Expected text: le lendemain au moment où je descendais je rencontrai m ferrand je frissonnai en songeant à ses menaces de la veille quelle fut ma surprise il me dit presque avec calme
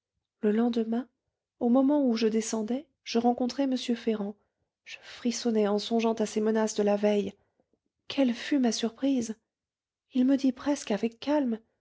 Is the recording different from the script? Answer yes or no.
no